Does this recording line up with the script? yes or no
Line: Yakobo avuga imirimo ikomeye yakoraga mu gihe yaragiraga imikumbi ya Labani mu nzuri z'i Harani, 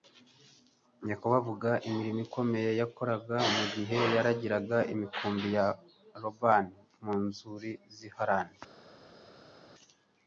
yes